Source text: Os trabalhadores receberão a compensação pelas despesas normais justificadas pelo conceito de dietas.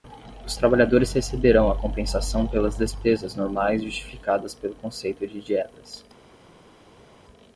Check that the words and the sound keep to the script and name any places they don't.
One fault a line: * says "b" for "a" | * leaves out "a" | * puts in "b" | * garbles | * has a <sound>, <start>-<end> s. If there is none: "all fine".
all fine